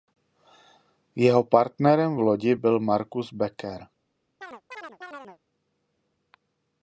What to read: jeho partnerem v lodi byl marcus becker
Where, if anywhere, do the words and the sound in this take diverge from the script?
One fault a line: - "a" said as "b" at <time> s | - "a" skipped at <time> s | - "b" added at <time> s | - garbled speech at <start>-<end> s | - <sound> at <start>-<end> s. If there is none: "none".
- chirp at 4.4-5.4 s